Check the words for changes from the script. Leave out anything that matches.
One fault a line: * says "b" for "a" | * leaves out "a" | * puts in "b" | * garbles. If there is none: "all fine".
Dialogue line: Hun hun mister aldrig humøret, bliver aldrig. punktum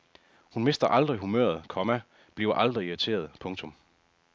* leaves out "hun"
* puts in "komma"
* puts in "irriteret"